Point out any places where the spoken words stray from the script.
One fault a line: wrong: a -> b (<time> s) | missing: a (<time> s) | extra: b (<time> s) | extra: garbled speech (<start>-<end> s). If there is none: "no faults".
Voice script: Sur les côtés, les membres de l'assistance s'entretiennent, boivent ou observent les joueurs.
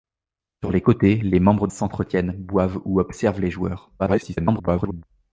missing: de l'assistance (1.7 s)
extra: garbled speech (4.0-5.0 s)